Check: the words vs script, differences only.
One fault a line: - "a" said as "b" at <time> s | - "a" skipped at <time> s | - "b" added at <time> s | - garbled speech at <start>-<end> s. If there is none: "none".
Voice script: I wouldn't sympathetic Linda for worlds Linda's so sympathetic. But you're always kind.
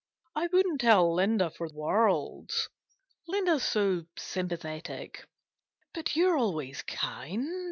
- "sympathetic" said as "tell" at 0.8 s